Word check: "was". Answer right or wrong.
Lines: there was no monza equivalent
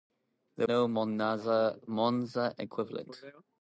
wrong